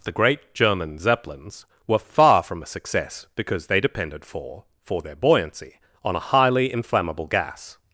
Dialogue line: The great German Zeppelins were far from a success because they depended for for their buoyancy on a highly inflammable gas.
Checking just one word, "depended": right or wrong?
right